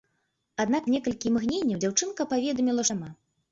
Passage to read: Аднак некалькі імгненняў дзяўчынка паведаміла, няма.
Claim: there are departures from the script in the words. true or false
false